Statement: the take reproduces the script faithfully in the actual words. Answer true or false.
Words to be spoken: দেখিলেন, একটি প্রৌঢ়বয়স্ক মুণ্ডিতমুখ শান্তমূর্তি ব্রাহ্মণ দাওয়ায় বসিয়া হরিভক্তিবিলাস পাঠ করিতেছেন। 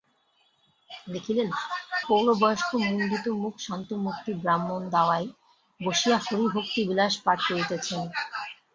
false